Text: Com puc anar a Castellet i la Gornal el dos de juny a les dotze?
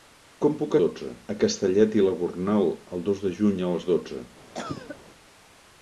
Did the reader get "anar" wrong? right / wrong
wrong